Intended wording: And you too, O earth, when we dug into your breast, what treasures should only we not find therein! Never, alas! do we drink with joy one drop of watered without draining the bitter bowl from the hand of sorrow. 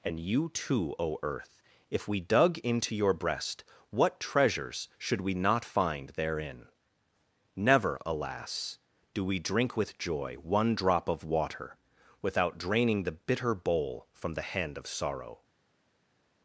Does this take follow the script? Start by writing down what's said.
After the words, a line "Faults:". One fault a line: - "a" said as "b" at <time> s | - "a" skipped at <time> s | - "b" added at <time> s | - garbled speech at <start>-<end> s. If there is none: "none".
And you too, O earth, if we dug into your breast, what treasures should we not find therein! Never, alas! do we drink with joy one drop of water without draining the bitter bowl from the hand of sorrow.
Faults:
- "when" said as "if" at 1.9 s
- "only" skipped at 5.2 s
- "watered" said as "water" at 11.3 s